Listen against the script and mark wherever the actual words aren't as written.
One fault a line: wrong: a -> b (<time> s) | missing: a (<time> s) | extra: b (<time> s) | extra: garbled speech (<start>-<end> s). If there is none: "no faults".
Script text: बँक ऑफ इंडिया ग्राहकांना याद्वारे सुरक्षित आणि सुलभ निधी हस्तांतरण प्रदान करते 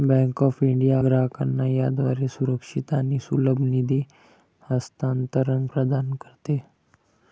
no faults